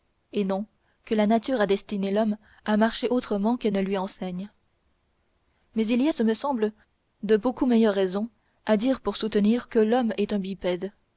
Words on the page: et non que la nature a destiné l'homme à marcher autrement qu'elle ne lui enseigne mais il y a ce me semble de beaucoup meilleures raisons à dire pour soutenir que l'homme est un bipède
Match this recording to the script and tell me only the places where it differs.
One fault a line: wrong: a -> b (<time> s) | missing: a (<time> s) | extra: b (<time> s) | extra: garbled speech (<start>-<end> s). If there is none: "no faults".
no faults